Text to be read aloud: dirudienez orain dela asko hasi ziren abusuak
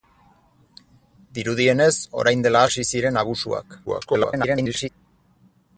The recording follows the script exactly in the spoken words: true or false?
false